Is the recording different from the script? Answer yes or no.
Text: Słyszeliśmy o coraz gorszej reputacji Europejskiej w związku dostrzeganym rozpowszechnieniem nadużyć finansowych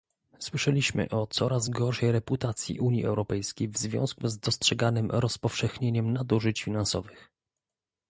yes